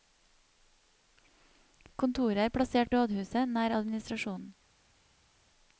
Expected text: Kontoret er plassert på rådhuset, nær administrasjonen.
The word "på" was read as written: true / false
false